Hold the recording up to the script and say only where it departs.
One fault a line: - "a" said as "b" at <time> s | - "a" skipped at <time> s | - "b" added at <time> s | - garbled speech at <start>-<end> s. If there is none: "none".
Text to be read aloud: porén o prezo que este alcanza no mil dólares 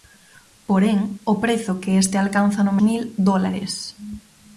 none